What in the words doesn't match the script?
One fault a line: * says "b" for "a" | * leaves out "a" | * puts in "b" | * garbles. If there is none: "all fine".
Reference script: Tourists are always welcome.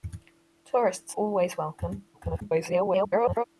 * leaves out "are"
* garbles